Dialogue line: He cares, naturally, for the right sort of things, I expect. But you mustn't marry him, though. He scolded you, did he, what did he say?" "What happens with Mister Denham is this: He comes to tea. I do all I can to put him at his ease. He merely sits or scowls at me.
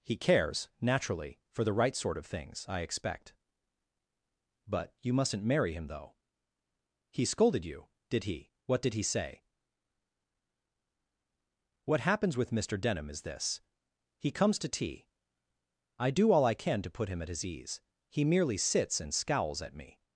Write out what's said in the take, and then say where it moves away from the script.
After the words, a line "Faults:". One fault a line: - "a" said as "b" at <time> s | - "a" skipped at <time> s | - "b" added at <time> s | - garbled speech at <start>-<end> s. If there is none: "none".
He cares, naturally, for the right sort of things, I expect. But you mustn't marry him, though. He scolded you, did he, what did he say?" "What happens with Mister Denham is this: He comes to tea. I do all I can to put him at his ease. He merely sits and scowls at me.
Faults:
- "or" said as "and" at 19.0 s